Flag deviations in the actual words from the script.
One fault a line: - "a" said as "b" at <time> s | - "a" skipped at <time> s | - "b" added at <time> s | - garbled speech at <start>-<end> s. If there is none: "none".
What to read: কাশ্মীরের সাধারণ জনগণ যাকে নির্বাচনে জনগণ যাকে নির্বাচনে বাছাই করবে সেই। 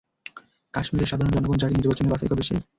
- "জনগণ যাকে নির্বাচনে" skipped at 2.1 s